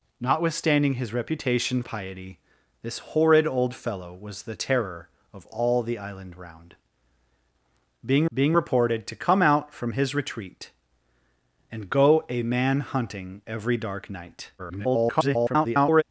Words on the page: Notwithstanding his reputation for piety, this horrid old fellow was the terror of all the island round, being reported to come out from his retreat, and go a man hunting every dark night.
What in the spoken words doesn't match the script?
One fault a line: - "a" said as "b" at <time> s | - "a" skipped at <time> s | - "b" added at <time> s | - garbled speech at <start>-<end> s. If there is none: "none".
- "for" skipped at 1.8 s
- "being" added at 8.3 s
- garbled speech at 14.6-16.0 s